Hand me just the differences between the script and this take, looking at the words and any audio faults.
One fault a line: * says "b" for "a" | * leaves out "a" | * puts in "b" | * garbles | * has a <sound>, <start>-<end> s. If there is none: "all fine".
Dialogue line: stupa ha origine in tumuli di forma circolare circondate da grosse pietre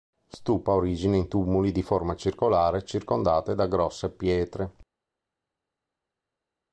all fine